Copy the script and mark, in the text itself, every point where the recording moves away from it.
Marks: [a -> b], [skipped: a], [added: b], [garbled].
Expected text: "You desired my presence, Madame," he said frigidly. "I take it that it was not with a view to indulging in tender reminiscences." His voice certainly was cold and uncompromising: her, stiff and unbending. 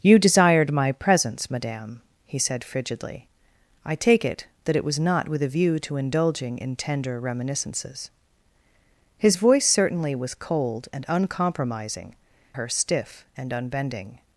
"You desired my presence, Madame," he said frigidly. "I take it that it was not with a view to indulging in tender reminiscences." His voice certainly was cold and uncompromising: her, stiff and unbending.